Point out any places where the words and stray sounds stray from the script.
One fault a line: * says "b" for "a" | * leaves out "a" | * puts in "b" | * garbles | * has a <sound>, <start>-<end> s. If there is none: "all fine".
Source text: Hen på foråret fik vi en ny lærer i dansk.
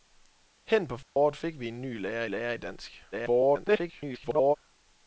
* has a dropout, 1.0-1.2 s
* puts in "lærer"
* garbles